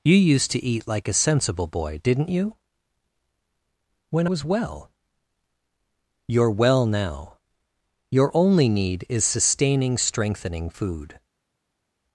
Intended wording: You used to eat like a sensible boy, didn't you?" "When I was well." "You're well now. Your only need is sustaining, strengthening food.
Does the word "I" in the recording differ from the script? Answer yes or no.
yes